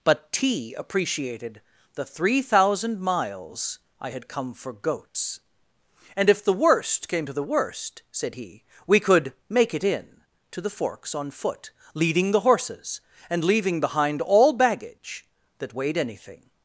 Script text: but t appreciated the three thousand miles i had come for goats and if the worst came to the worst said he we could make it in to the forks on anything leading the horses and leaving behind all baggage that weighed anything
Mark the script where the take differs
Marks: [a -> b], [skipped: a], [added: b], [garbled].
but t appreciated the three thousand miles i had come for goats and if the worst came to the worst said he we could make it in to the forks on [anything -> foot] leading the horses and leaving behind all baggage that weighed anything